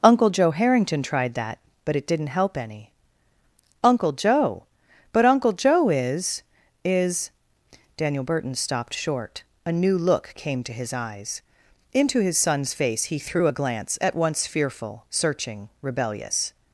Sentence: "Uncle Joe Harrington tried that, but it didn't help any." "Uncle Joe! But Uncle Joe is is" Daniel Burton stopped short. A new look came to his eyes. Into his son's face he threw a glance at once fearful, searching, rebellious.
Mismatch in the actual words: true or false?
false